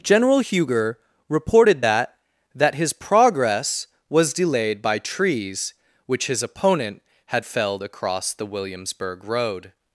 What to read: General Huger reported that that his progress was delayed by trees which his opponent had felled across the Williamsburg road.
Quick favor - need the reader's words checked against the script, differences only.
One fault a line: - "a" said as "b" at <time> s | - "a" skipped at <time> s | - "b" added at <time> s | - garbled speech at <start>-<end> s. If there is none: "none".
none